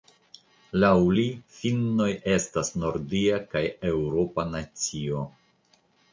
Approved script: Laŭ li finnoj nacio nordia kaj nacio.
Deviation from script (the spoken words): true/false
true